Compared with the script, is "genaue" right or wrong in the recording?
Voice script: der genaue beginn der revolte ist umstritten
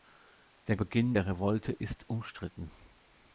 wrong